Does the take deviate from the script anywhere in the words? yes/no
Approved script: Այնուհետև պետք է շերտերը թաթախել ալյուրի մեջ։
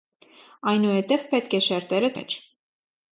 yes